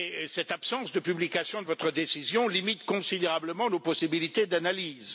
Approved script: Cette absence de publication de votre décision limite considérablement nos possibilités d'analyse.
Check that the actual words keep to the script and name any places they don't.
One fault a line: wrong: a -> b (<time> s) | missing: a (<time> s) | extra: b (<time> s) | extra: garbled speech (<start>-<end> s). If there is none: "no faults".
no faults